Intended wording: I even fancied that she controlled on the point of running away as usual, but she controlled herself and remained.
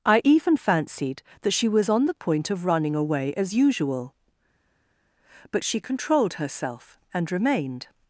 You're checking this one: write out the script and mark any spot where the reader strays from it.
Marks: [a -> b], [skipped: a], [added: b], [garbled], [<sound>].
I even fancied that she [controlled -> was] on the point of running away as usual, but she controlled herself and remained.